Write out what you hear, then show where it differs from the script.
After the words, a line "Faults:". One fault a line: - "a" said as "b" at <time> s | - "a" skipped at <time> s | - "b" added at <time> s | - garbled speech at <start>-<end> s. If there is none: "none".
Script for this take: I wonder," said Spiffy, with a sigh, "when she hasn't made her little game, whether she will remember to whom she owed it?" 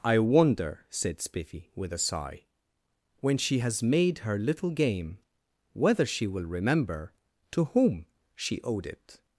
I wonder," said Spiffy, with a sigh, "when she has made her little game, whether she will remember to whom she owed it?"
Faults:
- "hasn't" said as "has" at 3.6 s